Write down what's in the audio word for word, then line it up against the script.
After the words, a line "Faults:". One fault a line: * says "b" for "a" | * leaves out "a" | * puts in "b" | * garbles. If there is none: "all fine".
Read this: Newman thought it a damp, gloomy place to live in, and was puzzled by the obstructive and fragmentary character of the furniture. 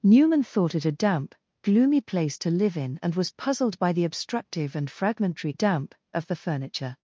Newman thought it a damp, gloomy place to live in, and was puzzled by the obstructive and fragmentary damp of the furniture.
Faults:
* says "damp" for "character"